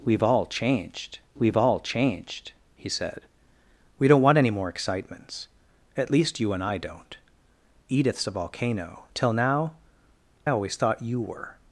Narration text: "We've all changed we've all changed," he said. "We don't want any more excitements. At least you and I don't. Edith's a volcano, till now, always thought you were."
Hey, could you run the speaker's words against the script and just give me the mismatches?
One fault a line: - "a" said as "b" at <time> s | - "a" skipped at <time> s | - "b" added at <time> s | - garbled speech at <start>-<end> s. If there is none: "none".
none